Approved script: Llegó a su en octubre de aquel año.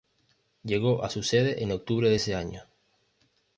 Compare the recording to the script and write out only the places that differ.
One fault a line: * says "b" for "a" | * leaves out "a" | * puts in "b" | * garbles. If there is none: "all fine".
* puts in "sede"
* says "ese" for "aquel"